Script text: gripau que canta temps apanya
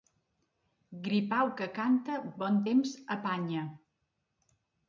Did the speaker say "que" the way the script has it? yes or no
yes